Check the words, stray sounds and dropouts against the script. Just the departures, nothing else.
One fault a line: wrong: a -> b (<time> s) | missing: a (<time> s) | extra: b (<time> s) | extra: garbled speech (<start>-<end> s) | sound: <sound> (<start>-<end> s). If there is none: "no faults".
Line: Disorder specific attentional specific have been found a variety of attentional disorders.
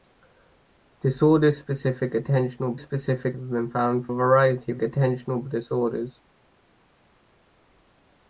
no faults